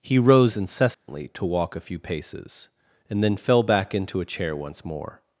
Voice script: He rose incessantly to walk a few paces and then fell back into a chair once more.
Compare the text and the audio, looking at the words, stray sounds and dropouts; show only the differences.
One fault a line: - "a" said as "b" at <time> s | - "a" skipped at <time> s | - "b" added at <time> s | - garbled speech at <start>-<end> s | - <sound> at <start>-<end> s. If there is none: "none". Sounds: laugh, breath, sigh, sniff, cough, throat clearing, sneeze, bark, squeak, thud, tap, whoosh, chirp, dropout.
- dropout at 0.9-1.1 s